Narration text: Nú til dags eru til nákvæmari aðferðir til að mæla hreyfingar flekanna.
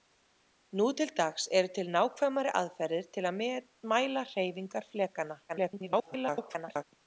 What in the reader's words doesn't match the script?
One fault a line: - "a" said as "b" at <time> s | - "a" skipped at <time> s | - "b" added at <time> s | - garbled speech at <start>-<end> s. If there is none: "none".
- garbled speech at 5.5-6.8 s